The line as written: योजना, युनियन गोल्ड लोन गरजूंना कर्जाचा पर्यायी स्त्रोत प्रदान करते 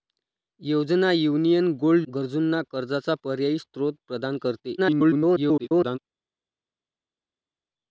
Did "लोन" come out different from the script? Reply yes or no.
yes